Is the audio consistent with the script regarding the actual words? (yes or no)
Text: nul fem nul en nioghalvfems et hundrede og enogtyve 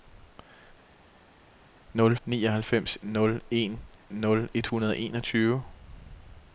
no